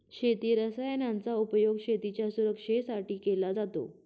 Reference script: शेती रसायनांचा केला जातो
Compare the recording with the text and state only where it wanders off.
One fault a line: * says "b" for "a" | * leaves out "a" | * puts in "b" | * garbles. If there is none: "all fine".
* puts in "उपयोग शेतीच्या सुरक्षेसाठी"